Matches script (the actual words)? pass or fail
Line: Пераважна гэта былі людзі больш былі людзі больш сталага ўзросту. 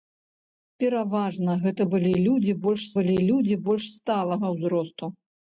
pass